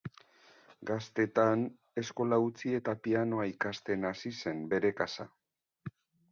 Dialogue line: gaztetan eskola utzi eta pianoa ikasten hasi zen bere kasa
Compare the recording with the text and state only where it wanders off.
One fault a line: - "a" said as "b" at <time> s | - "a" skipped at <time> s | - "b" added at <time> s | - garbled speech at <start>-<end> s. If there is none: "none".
none